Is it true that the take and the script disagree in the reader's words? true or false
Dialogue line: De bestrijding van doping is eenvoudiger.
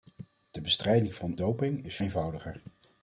false